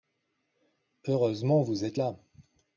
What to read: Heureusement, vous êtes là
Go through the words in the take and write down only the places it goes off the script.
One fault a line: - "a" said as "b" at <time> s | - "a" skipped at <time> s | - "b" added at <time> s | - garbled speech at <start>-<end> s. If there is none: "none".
none